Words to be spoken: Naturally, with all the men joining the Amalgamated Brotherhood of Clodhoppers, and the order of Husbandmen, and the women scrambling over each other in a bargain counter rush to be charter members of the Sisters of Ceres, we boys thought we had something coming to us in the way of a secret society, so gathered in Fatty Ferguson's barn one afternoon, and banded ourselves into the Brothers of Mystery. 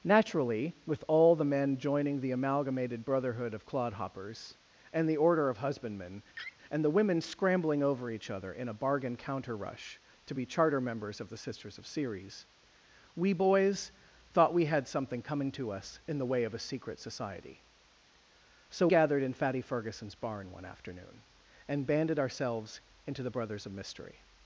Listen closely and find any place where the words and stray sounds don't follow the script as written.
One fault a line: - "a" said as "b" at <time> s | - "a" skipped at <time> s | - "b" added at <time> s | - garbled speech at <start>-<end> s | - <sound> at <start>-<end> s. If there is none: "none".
- laugh at 6.3-6.6 s